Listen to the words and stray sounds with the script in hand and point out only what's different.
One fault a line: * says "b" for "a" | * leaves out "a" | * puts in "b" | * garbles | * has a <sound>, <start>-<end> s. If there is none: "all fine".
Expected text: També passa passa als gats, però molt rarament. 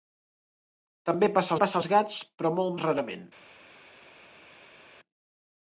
all fine